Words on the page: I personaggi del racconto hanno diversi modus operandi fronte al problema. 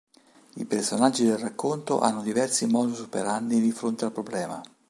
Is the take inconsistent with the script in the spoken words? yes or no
yes